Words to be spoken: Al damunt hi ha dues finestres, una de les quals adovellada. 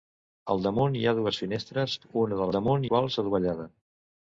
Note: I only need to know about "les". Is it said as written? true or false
false